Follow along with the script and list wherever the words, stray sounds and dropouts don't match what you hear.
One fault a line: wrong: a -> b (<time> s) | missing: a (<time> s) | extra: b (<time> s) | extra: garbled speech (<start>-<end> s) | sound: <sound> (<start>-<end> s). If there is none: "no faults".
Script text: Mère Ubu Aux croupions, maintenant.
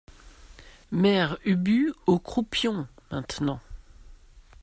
no faults